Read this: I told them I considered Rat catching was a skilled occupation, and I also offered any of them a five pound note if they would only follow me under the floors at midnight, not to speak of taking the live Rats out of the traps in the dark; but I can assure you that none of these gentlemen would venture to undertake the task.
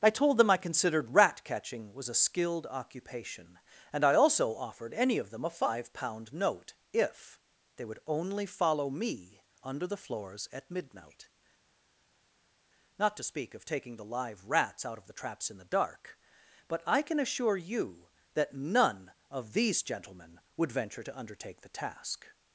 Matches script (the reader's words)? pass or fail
pass